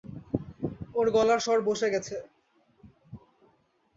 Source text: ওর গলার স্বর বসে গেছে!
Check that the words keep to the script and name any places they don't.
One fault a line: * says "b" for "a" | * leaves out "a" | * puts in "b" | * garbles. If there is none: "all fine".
all fine